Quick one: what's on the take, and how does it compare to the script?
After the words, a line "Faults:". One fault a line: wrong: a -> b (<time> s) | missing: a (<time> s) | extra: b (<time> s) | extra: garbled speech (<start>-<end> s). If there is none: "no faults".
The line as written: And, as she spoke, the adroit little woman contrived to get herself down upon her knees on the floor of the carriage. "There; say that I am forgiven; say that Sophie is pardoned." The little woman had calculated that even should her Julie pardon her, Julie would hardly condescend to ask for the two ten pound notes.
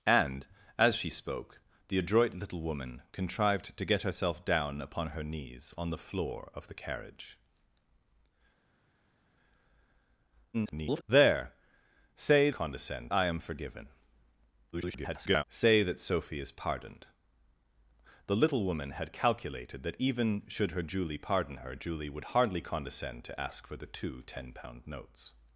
And, as she spoke, the adroit little woman contrived to get herself down upon her knees on the floor of the carriage. [garbled] "There; say condescend I am forgiven; [garbled] say that Sophie is pardoned." The little woman had calculated that even should her Julie pardon her, Julie would hardly condescend to ask for the two ten pound notes.
Faults:
extra: garbled speech (10.5-11.0 s)
wrong: that -> condescend (12.5 s)
extra: garbled speech (14.7-15.4 s)